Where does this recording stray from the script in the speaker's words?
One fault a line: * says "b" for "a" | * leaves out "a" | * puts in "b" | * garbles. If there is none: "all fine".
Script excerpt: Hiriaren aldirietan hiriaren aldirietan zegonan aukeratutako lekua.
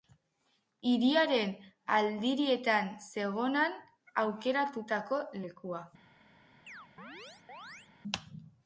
* leaves out "hiriaren aldirietan"